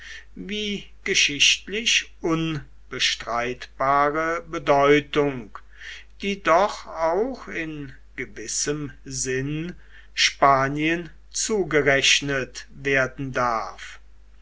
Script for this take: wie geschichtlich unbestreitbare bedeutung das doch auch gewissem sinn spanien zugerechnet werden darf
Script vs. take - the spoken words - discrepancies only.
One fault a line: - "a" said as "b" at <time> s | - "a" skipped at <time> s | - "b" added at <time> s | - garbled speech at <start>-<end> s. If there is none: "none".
- "das" said as "die" at 6.2 s
- "in" added at 7.5 s